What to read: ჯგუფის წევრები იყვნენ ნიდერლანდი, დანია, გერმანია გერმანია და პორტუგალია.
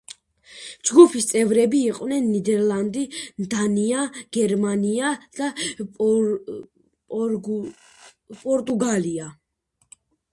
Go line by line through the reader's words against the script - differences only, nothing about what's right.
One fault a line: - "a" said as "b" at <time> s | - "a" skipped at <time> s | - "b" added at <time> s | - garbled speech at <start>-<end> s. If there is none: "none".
- "გერმანია" skipped at 5.1 s